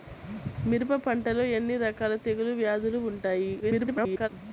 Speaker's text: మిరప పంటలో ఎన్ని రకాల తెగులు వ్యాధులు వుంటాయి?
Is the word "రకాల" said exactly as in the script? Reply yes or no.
yes